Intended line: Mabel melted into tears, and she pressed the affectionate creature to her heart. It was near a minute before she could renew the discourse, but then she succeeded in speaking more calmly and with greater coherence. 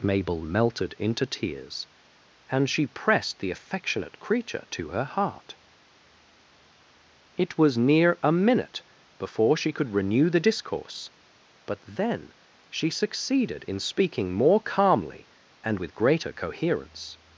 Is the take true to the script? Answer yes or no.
yes